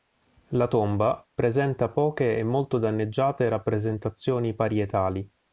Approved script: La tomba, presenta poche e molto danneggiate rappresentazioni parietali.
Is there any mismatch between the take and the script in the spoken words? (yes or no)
no